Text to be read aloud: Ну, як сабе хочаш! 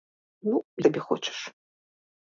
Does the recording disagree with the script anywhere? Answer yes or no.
yes